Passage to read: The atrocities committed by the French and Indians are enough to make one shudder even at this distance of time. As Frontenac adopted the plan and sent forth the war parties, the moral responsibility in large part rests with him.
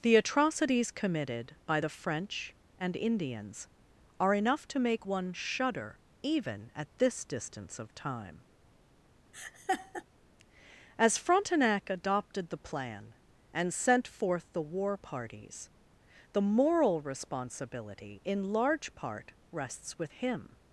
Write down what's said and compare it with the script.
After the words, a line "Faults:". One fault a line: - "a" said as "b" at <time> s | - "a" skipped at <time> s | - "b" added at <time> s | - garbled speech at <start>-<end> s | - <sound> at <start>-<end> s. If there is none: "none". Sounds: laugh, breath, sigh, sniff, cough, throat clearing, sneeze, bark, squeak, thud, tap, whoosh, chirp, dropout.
The atrocities committed by the French and Indians are enough to make one shudder even at this distance of time. As Frontenac adopted the plan and sent forth the war parties, the moral responsibility in large part rests with him.
Faults:
- laugh at 9.3-10.0 s